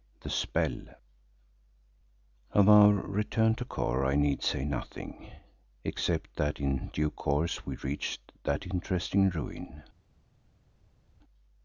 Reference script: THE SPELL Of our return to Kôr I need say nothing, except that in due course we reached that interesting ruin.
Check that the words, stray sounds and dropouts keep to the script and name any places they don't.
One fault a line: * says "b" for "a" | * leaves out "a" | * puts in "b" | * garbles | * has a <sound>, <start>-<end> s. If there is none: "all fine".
all fine